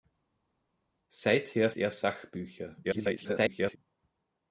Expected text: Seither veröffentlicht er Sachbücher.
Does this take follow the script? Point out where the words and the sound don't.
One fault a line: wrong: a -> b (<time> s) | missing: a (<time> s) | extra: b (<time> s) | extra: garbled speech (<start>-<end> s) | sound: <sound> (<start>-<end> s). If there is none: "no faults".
missing: veröffentlicht (1.7 s)
extra: garbled speech (2.8-3.8 s)